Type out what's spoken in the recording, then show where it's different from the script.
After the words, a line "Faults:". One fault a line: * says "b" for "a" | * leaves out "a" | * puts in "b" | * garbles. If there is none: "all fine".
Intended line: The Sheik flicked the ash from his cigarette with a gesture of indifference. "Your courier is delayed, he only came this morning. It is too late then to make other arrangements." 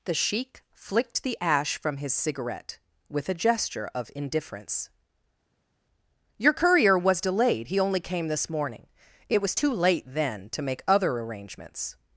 The Sheik flicked the ash from his cigarette with a gesture of indifference. "Your courier was delayed, he only came this morning. It was too late then to make other arrangements."
Faults:
* says "was" for "is"
* says "was" for "is"